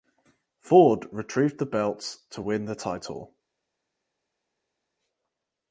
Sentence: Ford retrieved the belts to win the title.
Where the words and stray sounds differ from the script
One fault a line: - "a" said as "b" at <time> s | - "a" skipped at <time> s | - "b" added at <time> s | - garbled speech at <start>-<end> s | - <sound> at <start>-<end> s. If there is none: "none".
none